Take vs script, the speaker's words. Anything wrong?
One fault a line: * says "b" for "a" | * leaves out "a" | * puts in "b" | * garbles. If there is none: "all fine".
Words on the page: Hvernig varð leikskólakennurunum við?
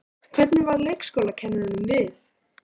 all fine